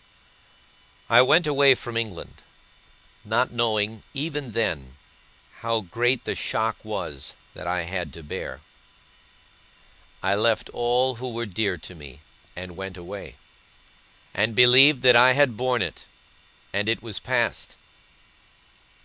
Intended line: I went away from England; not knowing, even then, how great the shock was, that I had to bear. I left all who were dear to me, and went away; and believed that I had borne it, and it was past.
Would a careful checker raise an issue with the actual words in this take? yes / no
no